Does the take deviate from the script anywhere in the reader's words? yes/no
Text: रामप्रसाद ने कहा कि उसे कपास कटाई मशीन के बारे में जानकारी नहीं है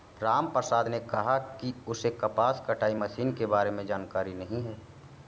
no